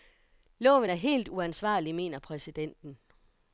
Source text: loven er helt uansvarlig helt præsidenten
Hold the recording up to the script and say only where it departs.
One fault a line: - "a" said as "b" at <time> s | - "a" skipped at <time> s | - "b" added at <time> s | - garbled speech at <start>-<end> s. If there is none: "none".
- "helt" said as "mener" at 1.9 s